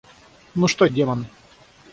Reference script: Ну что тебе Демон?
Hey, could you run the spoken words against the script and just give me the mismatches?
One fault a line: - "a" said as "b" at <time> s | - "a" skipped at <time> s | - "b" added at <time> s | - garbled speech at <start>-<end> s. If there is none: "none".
- "тебе" skipped at 0.9 s